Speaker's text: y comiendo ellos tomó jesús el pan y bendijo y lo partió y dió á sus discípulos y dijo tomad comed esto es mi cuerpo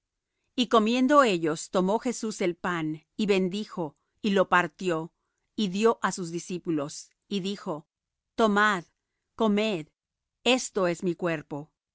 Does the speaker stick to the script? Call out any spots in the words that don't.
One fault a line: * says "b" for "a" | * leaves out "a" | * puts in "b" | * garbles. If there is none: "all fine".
all fine